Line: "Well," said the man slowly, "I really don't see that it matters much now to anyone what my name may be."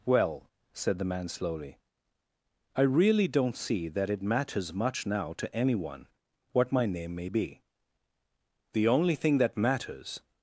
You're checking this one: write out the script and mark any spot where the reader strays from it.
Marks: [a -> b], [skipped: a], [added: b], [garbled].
"Well," said the man slowly, "I really don't see that it matters much now to anyone what my name may be." [added: The only thing that matters]